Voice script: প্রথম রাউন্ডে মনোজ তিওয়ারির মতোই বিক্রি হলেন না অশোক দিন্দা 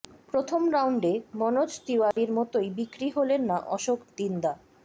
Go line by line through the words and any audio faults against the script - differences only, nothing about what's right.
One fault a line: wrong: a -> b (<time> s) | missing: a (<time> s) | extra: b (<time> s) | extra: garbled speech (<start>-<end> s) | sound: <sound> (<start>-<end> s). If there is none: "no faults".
sound: dropout (2.1-2.2 s)